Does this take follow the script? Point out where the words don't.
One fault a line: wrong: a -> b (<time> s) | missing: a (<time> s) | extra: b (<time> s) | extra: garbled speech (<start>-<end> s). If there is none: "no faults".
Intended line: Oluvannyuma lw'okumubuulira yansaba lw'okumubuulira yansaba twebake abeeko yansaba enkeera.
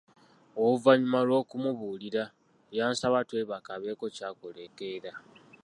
missing: lw'okumubuulira yansaba (3.2 s)
wrong: yansaba -> ky'akola (4.2 s)